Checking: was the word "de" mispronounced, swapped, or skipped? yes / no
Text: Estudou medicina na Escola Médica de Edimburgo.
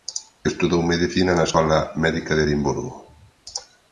no